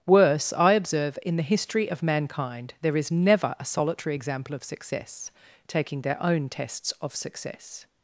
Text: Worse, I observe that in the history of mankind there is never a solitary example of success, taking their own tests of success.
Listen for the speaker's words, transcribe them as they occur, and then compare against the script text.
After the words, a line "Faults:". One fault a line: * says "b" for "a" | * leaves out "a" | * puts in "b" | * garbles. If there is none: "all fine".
Worse, I observe in the history of mankind there is never a solitary example of success, taking their own tests of success.
Faults:
* leaves out "that"